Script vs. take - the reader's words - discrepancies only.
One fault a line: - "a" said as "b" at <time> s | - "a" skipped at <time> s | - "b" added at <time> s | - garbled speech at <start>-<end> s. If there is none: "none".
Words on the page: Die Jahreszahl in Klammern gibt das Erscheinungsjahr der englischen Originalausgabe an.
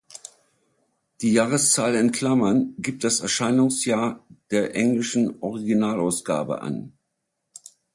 none